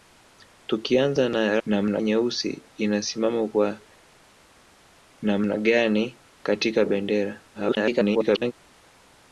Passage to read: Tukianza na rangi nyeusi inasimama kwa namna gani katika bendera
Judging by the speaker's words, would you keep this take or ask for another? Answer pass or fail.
fail